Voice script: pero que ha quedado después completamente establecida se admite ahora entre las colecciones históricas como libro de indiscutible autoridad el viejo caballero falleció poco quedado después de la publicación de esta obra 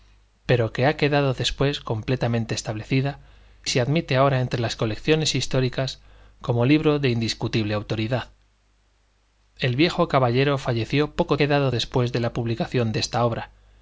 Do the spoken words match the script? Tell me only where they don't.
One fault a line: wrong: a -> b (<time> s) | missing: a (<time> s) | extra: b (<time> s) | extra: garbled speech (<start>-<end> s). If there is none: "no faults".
no faults